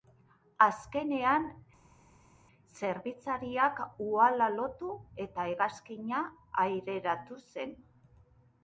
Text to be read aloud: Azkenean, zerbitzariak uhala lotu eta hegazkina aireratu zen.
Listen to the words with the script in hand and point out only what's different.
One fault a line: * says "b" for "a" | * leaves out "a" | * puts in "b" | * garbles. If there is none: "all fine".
all fine